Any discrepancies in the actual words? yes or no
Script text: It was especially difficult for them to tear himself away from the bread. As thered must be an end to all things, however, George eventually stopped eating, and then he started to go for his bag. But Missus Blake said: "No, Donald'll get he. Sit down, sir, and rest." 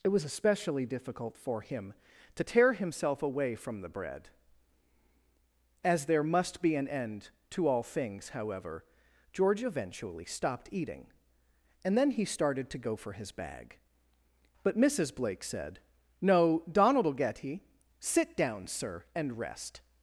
yes